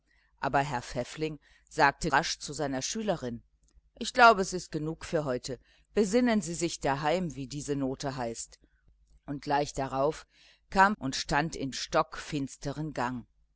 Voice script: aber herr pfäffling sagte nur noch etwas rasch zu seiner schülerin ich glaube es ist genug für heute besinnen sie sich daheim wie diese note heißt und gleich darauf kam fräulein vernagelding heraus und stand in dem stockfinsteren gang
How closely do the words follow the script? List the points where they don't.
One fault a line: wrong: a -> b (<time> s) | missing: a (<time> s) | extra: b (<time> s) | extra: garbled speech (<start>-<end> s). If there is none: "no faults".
missing: nur noch etwas (2.1 s)
missing: fräulein vernagelding heraus (11.0 s)
missing: dem (11.7 s)